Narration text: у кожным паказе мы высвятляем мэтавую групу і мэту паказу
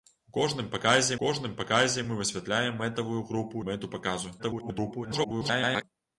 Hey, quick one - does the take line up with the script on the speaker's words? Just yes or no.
no